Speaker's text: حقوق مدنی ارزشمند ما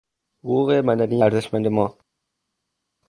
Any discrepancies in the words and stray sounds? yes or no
no